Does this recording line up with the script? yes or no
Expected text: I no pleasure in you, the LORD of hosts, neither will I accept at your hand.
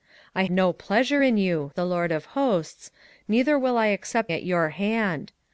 yes